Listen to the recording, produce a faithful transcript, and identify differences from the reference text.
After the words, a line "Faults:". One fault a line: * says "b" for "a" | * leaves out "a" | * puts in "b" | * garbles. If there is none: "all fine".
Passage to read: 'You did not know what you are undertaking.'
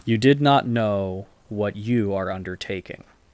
'You did not know what you are undertaking.'
Faults:
all fine